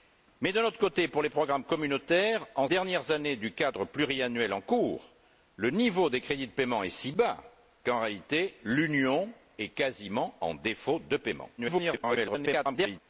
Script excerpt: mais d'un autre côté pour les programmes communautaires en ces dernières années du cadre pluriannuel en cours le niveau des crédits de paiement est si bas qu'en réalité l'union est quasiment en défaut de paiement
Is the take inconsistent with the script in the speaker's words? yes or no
yes